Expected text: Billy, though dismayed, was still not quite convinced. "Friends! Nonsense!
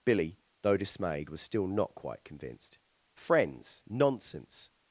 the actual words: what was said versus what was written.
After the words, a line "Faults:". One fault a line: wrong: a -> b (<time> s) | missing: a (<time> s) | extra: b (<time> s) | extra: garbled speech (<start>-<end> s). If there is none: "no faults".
Billy, though dismayed, was still not quite convinced. "Friends! Nonsense!
Faults:
no faults